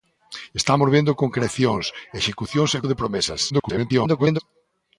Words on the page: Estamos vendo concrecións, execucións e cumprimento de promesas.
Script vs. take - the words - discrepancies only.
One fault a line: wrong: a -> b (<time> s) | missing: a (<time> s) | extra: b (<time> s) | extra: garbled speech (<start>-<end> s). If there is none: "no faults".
missing: cumprimento (2.8 s)
extra: garbled speech (3.5-4.4 s)